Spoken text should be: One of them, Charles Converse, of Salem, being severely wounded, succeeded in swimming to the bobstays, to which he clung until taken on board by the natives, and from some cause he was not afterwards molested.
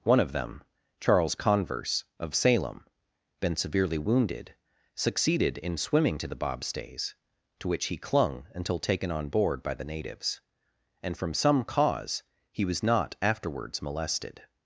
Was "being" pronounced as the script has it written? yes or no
no